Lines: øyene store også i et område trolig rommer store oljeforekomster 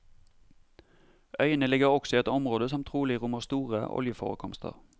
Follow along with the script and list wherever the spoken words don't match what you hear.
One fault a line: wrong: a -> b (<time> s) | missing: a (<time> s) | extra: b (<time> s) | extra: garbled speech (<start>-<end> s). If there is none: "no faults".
wrong: store -> ligger (1.7 s)
extra: som (2.7 s)